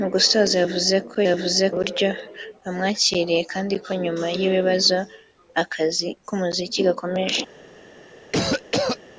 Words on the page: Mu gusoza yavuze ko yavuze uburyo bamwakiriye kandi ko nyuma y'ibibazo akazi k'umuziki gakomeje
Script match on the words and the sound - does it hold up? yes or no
no